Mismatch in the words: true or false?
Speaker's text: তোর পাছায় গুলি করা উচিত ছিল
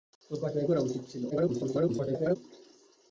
true